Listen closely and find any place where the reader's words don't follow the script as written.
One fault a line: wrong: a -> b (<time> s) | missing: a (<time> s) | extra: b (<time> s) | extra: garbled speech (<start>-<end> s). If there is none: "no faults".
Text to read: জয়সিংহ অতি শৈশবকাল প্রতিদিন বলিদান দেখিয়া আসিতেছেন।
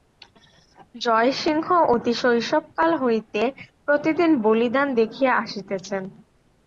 extra: হইতে (3.0 s)